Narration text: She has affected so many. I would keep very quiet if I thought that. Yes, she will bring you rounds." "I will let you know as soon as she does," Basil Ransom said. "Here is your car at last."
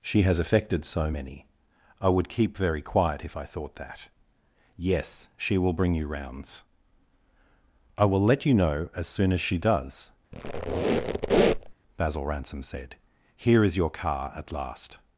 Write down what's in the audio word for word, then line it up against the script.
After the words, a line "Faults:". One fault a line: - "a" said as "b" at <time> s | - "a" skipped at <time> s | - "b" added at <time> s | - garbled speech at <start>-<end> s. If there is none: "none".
She has affected so many. I would keep very quiet if I thought that. Yes, she will bring you rounds." "I will let you know as soon as she does," Basil Ransom said. "Here is your car at last."
Faults:
none